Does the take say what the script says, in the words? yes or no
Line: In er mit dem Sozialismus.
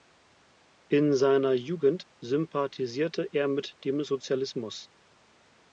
no